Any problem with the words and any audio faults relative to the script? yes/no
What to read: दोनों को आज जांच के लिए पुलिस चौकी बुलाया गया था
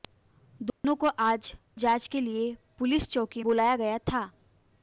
yes